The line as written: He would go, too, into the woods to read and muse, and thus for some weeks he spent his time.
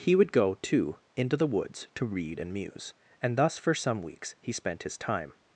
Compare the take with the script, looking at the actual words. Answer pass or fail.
pass